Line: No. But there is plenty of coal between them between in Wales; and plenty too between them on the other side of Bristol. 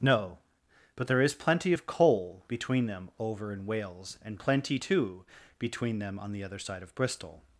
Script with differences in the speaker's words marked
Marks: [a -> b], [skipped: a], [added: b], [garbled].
No. But there is plenty of coal between them [between -> over] in Wales; and plenty too between them on the other side of Bristol.